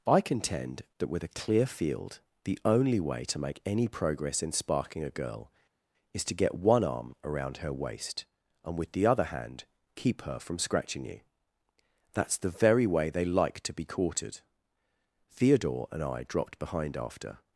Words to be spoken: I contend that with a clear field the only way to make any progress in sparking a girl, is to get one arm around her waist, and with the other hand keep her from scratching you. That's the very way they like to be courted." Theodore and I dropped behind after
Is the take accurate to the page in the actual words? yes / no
yes